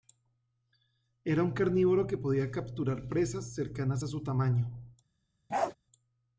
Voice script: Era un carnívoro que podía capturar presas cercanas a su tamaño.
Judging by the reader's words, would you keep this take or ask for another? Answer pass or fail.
pass